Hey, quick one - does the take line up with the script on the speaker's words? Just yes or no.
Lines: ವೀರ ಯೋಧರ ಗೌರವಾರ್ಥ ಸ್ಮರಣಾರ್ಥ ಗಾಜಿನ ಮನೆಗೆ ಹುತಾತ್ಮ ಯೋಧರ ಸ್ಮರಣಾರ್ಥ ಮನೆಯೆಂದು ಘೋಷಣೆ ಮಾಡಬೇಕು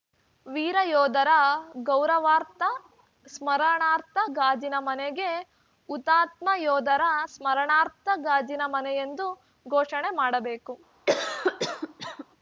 no